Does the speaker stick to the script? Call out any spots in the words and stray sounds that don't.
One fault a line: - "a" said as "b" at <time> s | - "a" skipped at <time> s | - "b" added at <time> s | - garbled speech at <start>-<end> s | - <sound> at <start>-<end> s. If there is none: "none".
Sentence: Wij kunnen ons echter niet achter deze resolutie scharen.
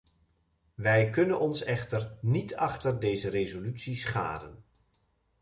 none